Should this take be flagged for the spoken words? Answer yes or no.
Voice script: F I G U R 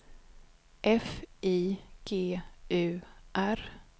no